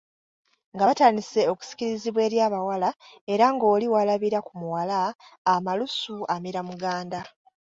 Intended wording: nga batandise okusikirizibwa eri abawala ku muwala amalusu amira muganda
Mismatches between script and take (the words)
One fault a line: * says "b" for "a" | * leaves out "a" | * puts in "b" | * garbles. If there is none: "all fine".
* puts in "era ng'oli walabira"